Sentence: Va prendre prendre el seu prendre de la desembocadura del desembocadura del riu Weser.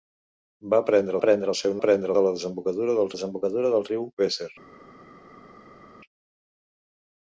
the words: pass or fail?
pass